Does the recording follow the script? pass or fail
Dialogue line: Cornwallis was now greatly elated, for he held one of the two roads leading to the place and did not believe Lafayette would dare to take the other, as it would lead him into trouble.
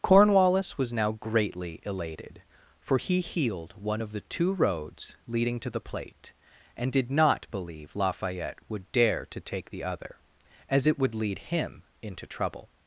fail